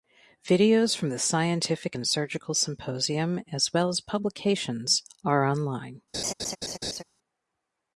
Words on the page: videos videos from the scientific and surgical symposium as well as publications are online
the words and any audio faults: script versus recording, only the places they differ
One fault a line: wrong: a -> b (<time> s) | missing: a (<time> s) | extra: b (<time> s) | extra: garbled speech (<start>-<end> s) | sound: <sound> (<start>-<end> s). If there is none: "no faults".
missing: videos (1.0 s)
sound: laugh (6.1-7.0 s)